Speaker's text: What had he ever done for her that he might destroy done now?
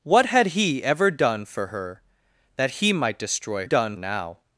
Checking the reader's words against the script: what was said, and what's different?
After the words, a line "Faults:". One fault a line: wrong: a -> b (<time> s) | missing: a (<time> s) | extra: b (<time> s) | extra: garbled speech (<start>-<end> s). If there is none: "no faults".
What had he ever done for her that he might destroy done now?
Faults:
no faults